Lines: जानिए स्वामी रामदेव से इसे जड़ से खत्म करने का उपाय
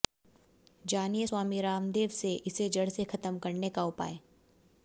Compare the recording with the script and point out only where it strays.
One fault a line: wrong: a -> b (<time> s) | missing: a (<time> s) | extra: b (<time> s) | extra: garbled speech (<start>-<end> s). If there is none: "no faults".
no faults